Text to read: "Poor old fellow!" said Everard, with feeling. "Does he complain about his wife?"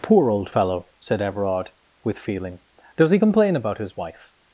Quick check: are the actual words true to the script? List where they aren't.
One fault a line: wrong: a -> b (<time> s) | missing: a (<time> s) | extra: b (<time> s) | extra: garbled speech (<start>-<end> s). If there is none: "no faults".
no faults